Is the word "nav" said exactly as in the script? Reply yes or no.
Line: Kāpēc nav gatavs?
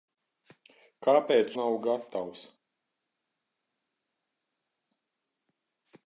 yes